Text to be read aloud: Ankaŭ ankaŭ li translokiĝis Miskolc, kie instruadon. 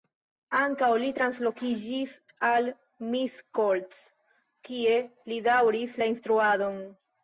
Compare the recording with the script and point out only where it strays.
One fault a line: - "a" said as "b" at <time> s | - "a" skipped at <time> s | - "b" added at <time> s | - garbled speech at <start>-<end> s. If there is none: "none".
- "ankaŭ" skipped at 0.9 s
- "al" added at 2.5 s
- "li daŭris la" added at 5.3 s